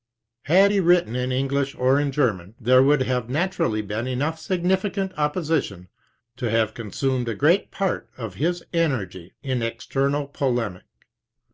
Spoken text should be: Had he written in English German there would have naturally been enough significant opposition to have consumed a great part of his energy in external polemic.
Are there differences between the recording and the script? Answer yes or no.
yes